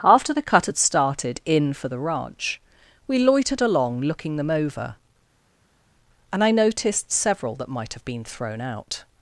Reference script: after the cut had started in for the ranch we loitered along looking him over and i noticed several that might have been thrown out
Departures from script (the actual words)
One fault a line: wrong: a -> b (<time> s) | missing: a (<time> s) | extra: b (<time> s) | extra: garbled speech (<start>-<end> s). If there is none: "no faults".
wrong: him -> them (4.3 s)